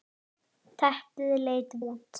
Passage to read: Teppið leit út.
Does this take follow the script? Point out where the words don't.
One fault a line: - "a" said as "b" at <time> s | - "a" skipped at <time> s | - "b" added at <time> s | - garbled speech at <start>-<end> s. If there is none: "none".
none